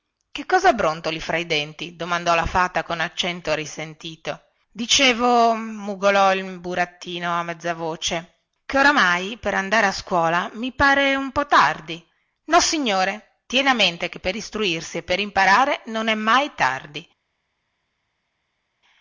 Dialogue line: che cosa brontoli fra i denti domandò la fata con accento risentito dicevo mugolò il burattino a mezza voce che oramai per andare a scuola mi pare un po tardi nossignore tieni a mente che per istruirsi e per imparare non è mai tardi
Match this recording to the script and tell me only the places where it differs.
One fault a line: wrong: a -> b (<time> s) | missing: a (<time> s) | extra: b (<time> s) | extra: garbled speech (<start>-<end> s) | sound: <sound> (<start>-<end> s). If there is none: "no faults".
no faults